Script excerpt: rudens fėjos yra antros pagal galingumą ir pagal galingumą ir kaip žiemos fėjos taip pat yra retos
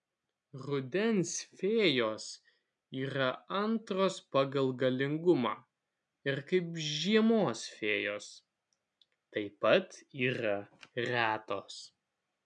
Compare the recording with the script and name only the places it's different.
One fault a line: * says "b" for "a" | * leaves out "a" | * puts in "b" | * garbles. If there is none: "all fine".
* leaves out "pagal galingumą ir"